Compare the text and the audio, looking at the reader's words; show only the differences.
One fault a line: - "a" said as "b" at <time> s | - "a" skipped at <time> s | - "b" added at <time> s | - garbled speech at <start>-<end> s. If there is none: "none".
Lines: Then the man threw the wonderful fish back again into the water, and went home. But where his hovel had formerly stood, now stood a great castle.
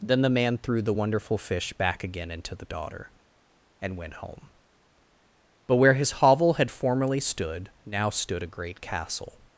- "water" said as "daughter" at 2.6 s